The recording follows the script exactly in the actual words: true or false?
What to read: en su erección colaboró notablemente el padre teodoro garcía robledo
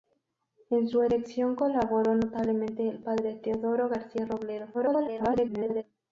false